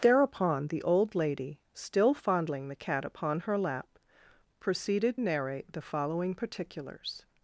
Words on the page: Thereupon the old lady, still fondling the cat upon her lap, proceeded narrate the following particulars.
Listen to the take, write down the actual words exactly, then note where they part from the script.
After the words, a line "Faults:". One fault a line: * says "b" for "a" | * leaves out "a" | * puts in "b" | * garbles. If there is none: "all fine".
Thereupon the old lady, still fondling the cat upon her lap, proceeded narrate the following particulars.
Faults:
all fine